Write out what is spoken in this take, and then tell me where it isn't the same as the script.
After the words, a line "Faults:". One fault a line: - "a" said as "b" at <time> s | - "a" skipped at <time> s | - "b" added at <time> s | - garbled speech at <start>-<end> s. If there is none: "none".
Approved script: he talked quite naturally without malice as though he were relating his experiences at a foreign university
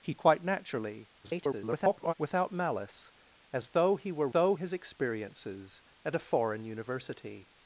he quite naturally [garbled] without malice as though he were though his experiences at a foreign university
Faults:
- "talked" skipped at 0.1 s
- garbled speech at 1.2-2.1 s
- "relating" said as "though" at 4.3 s